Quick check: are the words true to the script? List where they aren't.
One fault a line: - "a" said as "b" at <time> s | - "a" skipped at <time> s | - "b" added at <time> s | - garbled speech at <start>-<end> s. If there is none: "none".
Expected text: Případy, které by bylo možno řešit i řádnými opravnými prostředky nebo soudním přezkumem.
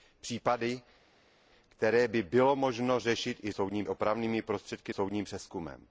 - "řádnými" said as "soudním" at 3.5 s
- "nebo" skipped at 4.9 s